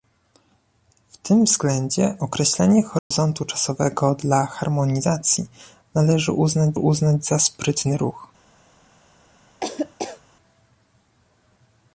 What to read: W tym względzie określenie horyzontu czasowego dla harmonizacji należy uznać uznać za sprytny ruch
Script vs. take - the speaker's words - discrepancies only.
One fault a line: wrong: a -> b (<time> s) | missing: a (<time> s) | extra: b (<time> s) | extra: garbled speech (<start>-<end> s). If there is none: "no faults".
no faults